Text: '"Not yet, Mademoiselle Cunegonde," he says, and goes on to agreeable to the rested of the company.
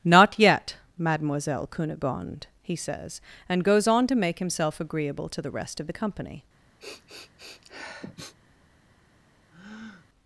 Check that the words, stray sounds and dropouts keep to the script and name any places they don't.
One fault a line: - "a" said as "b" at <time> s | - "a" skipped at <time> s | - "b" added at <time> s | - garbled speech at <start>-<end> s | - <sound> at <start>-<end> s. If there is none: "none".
- "make himself" added at 4.2 s
- "rested" said as "rest" at 5.5 s
- sniff at 6.8-8.4 s
- breath at 9.5-10.1 s